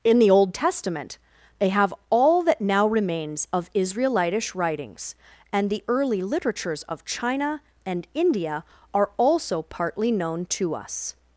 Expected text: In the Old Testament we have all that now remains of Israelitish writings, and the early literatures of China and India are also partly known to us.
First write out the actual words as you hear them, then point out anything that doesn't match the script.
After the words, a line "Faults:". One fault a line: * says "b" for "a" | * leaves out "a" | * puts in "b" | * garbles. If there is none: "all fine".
In the Old Testament they have all that now remains of Israelitish writings, and the early literatures of China and India are also partly known to us.
Faults:
* says "they" for "we"